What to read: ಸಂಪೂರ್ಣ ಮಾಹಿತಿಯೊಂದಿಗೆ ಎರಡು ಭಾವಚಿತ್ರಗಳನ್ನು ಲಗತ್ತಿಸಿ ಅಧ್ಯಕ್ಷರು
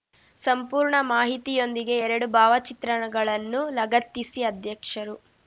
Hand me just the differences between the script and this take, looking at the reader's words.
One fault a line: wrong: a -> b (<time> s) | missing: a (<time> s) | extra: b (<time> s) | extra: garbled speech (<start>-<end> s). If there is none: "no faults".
no faults